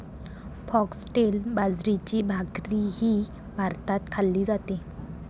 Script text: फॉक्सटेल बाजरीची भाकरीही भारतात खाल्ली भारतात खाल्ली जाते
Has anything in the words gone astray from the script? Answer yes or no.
yes